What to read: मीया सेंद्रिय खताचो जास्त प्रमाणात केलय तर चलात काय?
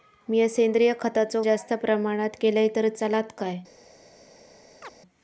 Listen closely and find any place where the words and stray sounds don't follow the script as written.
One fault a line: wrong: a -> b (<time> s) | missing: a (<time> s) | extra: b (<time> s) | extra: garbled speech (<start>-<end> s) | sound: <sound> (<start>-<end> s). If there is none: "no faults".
sound: chirp (4.8-4.9 s)